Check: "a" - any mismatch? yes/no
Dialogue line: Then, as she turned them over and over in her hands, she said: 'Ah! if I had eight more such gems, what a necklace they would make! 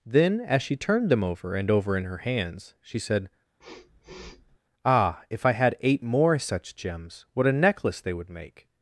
no